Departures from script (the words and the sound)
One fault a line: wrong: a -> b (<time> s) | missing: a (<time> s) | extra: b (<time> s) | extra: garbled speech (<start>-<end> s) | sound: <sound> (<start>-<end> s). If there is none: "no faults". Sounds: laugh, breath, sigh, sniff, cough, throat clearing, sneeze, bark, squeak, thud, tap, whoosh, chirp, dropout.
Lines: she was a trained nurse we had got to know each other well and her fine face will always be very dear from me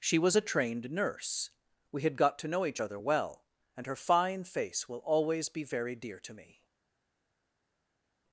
wrong: from -> to (6.2 s)